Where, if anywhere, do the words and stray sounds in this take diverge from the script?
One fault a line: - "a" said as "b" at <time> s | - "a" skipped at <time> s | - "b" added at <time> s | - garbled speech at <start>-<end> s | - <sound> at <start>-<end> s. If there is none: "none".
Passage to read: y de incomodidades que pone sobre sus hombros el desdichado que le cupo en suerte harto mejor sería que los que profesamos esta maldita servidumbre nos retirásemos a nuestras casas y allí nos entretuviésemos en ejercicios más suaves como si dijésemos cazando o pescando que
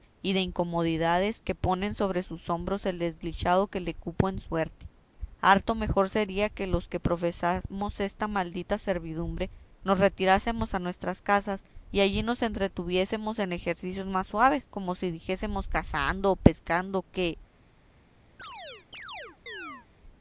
- chirp at 18.4-19.9 s